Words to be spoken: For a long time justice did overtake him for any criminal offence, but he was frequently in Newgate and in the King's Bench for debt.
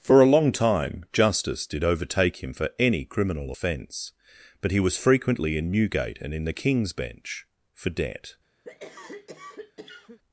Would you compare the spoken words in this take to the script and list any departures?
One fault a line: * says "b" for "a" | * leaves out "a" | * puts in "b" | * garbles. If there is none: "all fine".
all fine